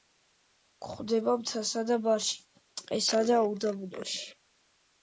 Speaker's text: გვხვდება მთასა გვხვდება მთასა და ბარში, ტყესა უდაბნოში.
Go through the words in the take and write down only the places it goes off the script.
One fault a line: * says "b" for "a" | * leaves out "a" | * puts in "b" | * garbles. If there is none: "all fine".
* leaves out "გვხვდება მთასა"
* puts in "და"